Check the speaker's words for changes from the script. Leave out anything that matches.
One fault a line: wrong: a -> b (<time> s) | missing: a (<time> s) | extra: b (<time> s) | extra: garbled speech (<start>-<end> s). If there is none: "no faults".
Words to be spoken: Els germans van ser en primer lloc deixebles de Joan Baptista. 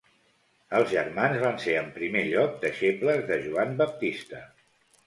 no faults